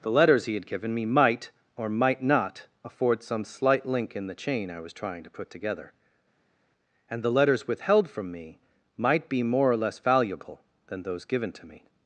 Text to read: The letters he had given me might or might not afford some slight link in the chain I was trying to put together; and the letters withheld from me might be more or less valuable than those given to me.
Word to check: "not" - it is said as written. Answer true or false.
true